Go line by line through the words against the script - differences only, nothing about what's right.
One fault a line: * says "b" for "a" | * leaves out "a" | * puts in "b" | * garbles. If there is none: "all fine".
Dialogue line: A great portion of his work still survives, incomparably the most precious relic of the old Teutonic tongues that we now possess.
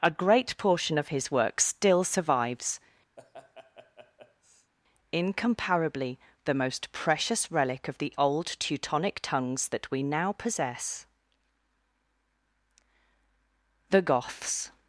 * puts in "The Goths"